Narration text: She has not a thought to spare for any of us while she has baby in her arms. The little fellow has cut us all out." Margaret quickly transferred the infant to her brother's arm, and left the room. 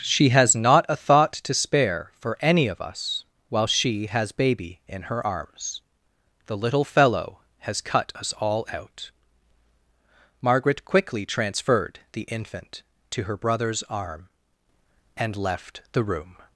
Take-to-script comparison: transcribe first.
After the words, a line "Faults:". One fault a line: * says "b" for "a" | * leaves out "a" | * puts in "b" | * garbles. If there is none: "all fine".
She has not a thought to spare for any of us while she has baby in her arms. The little fellow has cut us all out." Margaret quickly transferred the infant to her brother's arm, and left the room.
Faults:
all fine